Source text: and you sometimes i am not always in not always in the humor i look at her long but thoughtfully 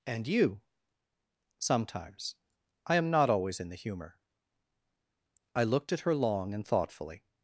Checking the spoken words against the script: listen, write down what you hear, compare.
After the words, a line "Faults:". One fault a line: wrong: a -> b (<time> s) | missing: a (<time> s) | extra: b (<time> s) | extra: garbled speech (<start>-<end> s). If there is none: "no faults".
and you sometimes i am not always in the humor i looked at her long and thoughtfully
Faults:
missing: not always in (3.7 s)
wrong: look -> looked (5.6 s)
wrong: but -> and (6.5 s)